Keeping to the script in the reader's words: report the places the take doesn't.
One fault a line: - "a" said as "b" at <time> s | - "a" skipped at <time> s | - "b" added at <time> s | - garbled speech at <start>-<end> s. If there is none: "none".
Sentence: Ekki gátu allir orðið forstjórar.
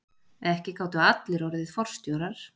none